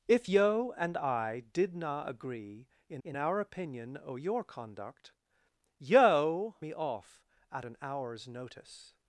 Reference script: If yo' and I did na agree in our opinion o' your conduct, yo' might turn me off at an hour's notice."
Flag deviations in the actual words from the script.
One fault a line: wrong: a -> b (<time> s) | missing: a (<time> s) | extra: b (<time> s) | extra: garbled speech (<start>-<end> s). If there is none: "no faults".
extra: in (3.0 s)
missing: might turn (6.6 s)